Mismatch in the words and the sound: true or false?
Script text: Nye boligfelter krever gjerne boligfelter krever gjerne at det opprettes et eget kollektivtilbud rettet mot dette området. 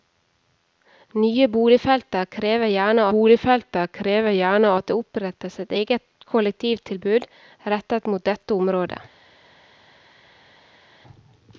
false